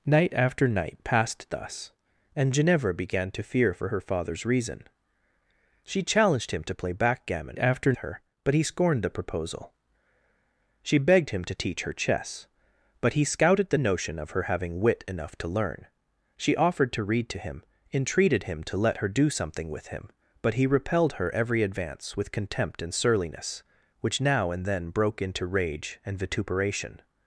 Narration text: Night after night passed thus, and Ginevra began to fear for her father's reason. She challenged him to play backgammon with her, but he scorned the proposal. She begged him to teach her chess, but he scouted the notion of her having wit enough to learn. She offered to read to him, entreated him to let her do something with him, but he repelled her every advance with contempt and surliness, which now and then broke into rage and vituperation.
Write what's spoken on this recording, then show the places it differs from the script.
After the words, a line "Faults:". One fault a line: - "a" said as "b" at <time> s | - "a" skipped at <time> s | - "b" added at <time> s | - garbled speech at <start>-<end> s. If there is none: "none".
Night after night passed thus, and Ginevra began to fear for her father's reason. She challenged him to play backgammon after her, but he scorned the proposal. She begged him to teach her chess, but he scouted the notion of her having wit enough to learn. She offered to read to him, entreated him to let her do something with him, but he repelled her every advance with contempt and surliness, which now and then broke into rage and vituperation.
Faults:
- "with" said as "after" at 7.6 s